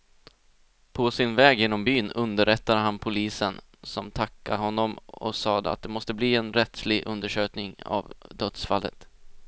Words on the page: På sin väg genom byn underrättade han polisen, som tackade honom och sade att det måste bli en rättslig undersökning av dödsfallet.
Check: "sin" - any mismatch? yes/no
no